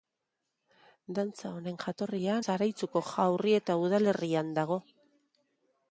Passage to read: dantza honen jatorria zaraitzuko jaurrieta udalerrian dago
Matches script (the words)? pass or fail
pass